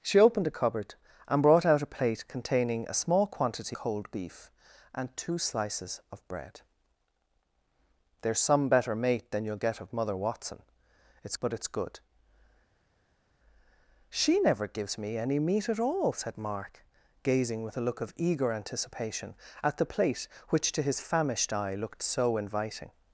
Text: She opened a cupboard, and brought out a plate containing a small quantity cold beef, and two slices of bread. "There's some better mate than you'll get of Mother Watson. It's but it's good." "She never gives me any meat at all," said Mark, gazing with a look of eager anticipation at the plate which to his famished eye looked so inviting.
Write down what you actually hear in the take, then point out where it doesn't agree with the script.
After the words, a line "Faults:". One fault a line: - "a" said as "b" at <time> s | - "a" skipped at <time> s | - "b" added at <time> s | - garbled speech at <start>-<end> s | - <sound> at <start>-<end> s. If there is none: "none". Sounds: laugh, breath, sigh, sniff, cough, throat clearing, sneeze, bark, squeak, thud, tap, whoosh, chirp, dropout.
She opened a cupboard, and brought out a plate containing a small quantity cold beef, and two slices of bread. "There's some better mate than you'll get of Mother Watson. It's but it's good." "She never gives me any meat at all," said Mark, gazing with a look of eager anticipation at the plate which to his famished eye looked so inviting.
Faults:
none